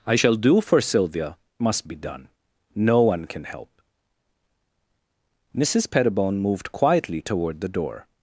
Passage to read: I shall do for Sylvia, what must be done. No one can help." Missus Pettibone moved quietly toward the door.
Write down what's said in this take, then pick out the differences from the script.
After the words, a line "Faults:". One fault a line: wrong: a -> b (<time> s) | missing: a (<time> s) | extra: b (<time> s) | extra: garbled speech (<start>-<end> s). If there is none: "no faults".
I shall do for Sylvia, must be done. No one can help." Missus Pettibone moved quietly toward the door.
Faults:
missing: what (1.4 s)